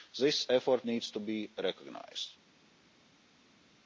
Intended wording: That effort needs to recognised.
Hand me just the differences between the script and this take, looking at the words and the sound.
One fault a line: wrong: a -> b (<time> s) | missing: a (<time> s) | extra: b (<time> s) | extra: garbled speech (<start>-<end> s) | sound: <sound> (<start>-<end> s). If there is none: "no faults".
wrong: That -> This (0.2 s)
extra: be (1.2 s)